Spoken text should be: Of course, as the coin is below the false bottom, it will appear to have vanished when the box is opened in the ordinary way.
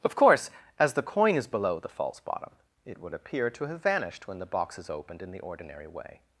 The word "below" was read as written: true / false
true